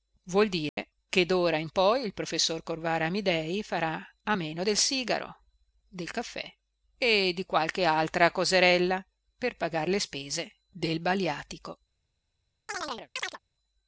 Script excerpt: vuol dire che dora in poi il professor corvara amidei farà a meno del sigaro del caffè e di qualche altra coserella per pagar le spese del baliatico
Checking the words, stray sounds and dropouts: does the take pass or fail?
fail